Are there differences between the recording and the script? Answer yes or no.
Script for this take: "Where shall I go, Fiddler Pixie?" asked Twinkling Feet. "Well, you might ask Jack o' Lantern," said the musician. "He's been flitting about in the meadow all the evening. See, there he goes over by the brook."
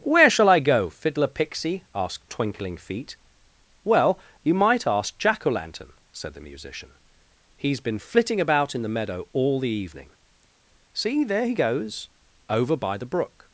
no